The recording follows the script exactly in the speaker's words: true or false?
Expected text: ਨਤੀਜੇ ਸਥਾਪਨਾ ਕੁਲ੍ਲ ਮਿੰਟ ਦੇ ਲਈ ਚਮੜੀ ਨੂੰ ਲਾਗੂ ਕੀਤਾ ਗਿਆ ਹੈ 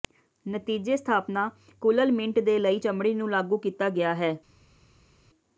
true